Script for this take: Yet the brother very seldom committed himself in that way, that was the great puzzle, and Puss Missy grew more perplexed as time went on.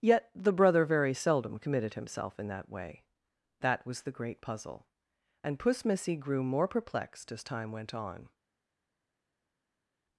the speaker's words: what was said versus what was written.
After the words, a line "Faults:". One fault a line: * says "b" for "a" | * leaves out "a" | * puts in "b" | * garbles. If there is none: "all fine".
Yet the brother very seldom committed himself in that way, that was the great puzzle, and Puss Missy grew more perplexed as time went on.
Faults:
all fine